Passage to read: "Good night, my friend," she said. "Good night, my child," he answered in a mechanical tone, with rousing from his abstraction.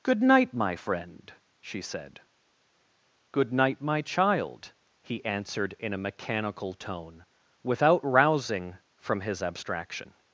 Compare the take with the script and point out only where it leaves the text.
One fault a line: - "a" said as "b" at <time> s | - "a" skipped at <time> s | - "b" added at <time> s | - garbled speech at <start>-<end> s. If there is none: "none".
- "with" said as "without" at 7.6 s